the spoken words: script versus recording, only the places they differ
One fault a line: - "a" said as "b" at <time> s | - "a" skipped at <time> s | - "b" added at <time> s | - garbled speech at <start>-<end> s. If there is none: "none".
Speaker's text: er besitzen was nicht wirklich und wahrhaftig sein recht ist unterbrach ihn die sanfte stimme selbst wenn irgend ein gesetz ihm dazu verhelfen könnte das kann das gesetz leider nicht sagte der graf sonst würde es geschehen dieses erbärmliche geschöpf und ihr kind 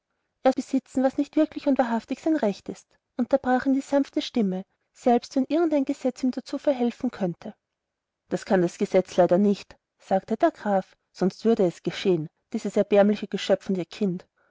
none